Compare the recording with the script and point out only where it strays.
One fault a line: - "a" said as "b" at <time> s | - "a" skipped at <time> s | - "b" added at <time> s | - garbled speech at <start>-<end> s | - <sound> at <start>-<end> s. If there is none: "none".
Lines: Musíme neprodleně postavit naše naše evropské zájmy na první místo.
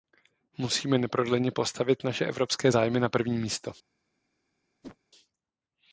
- "naše" skipped at 2.2 s
- whoosh at 4.8-5.0 s